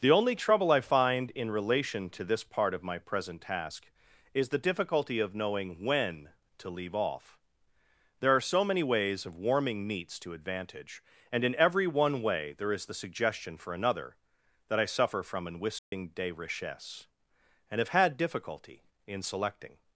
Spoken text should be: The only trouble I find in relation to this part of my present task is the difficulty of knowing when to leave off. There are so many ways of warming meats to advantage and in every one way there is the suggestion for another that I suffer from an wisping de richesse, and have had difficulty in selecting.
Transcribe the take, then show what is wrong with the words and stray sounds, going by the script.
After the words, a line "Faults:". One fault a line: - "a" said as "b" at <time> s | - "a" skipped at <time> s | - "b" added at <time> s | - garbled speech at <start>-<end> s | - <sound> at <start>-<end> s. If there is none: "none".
The only trouble I find in relation to this part of my present task is the difficulty of knowing when to leave off. There are so many ways of warming meats to advantage and in every one way there is the suggestion for another that I suffer from an wisping de richesse, and have had difficulty in selecting.
Faults:
- dropout at 15.8-15.9 s